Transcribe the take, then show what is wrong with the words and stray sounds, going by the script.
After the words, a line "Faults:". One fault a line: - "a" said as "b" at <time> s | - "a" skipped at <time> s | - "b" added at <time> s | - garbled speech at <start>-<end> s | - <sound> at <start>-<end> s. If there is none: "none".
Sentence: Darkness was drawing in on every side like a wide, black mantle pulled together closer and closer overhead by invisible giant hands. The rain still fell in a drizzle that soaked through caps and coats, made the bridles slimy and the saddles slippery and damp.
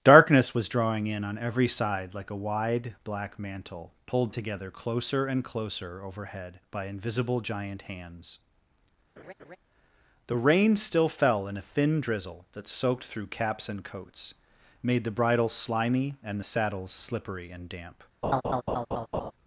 Darkness was drawing in on every side like a wide, black mantle pulled together closer and closer overhead by invisible giant hands. The rain still fell in a thin drizzle that soaked through caps and coats, made the bridles slimy and the saddles slippery and damp.
Faults:
- laugh at 9.2-9.6 s
- "thin" added at 11.6 s
- laugh at 18.2-19.3 s